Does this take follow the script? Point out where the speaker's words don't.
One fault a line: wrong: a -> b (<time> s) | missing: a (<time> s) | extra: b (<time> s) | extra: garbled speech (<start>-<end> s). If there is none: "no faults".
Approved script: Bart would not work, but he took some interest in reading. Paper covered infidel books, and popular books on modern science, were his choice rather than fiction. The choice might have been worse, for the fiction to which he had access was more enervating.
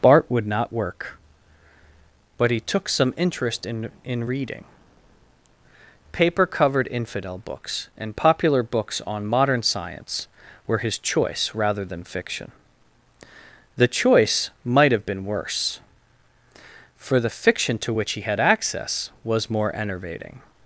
extra: in (4.0 s)